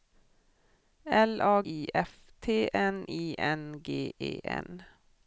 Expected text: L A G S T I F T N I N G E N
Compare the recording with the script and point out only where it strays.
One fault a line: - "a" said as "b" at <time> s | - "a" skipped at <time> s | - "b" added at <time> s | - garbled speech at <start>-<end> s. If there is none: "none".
- "G S T" skipped at 1.6 s